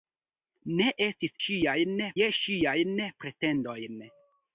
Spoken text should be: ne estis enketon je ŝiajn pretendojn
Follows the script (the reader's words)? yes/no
no